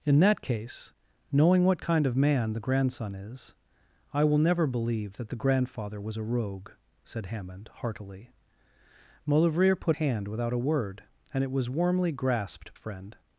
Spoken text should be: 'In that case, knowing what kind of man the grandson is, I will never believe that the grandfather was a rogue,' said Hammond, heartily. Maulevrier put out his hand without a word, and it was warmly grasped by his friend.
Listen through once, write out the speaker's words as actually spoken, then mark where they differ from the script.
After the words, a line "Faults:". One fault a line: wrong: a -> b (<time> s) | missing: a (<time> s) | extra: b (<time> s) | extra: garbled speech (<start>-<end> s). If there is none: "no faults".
'In that case, knowing what kind of man the grandson is, I will never believe that the grandfather was a rogue,' said Hammond, heartily. Maulevrier put hand without a word, and it was warmly grasped friend.
Faults:
missing: out his (10.0 s)
missing: by his (12.7 s)